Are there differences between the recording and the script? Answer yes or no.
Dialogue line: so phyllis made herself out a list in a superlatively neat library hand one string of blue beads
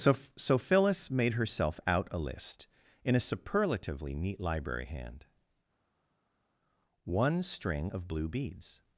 yes